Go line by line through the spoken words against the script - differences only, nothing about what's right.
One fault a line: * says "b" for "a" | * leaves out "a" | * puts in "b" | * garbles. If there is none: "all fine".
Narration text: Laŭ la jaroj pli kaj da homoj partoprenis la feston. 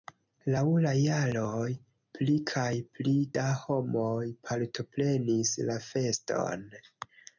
* puts in "pli"